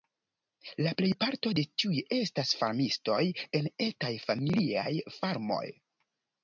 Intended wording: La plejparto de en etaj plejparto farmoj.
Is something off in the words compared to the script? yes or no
yes